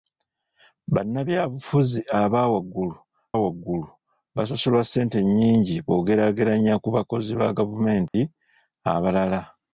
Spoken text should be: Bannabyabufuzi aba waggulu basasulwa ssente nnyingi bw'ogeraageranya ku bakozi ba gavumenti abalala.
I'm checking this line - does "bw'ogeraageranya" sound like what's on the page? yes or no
yes